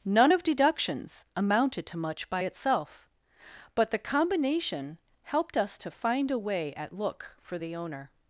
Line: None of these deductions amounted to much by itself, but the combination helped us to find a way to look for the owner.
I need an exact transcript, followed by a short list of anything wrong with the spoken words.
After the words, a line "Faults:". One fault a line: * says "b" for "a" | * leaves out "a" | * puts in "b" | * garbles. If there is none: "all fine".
None of deductions amounted to much by itself, but the combination helped us to find a way at look for the owner.
Faults:
* leaves out "these"
* says "at" for "to"